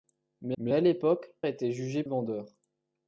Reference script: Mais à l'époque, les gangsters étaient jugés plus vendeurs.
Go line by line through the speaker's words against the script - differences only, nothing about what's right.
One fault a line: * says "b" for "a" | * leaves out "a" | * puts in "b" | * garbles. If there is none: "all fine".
* puts in "mais"
* leaves out "les gangsters"
* leaves out "plus"